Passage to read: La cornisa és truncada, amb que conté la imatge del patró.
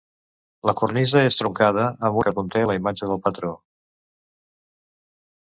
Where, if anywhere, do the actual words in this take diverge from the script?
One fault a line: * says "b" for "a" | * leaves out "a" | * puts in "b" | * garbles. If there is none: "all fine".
all fine